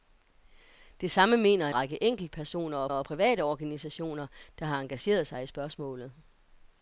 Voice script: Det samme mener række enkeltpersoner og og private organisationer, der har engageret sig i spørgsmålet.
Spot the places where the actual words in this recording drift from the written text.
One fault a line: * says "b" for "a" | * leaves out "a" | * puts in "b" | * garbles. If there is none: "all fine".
all fine